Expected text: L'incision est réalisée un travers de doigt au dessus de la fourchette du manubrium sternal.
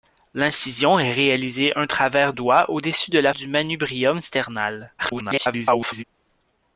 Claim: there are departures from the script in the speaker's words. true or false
true